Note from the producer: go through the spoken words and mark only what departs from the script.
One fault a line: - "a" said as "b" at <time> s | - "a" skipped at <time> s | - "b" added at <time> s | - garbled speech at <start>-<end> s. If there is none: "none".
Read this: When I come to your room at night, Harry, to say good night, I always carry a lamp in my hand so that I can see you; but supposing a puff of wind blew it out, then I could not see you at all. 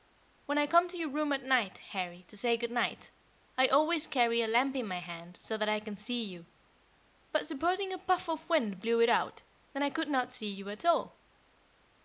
none